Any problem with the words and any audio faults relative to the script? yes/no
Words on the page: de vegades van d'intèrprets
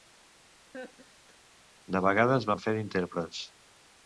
yes